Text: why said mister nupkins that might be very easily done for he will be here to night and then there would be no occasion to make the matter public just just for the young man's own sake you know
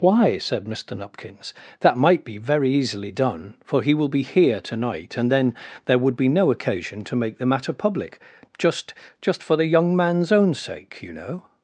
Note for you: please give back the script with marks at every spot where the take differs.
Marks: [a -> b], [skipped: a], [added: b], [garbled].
why said mister nupkins that might be very easily done for he will be here to night and then there would be no occasion to make the matter public just just for the young man's own sake you know